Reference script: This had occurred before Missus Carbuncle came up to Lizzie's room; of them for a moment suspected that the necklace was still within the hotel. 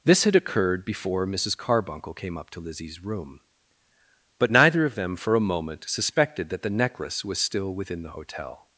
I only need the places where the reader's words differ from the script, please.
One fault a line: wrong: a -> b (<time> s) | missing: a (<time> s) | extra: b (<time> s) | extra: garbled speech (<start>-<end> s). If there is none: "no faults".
extra: but neither (4.4 s)